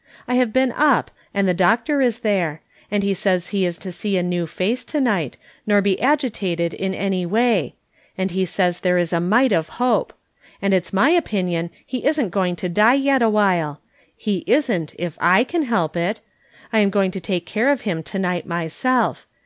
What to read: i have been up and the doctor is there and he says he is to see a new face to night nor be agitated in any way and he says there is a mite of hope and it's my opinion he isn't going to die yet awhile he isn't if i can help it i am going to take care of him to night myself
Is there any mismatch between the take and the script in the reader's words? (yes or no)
no